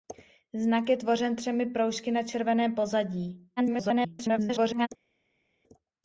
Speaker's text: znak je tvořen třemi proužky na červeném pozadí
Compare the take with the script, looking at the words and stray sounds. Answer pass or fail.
fail